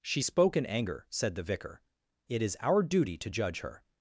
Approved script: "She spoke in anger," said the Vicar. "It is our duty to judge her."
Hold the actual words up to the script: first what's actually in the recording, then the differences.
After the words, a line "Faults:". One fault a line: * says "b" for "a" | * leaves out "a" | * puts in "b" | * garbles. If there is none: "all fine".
"She spoke in anger," said the Vicar. "It is our duty to judge her."
Faults:
all fine